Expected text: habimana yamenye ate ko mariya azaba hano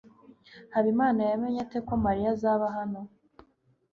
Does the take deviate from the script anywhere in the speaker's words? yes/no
no